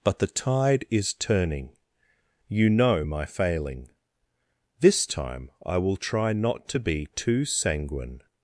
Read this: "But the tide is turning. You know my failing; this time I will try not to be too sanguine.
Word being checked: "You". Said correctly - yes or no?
yes